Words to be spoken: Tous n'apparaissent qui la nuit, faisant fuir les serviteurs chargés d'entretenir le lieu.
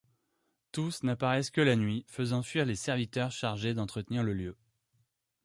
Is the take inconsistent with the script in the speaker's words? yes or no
yes